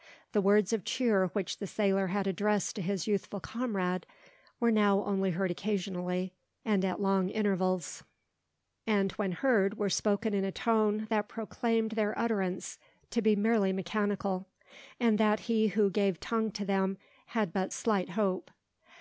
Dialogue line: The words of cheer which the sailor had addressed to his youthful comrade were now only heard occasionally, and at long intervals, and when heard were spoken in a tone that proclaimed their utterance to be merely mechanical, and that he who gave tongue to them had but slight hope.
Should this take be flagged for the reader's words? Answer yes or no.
no